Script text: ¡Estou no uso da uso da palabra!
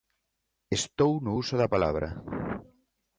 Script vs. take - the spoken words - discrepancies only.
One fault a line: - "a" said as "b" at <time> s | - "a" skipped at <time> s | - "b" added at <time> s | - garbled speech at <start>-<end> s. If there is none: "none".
- "uso da" skipped at 1.7 s